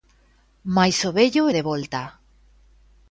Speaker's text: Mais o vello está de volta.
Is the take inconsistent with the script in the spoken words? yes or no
yes